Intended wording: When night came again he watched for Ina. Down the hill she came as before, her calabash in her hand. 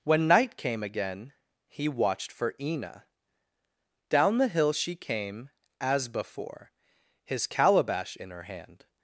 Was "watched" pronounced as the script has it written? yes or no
yes